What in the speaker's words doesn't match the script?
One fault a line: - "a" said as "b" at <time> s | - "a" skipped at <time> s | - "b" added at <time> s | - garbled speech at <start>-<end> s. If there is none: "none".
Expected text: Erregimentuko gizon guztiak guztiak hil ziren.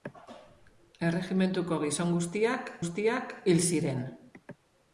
none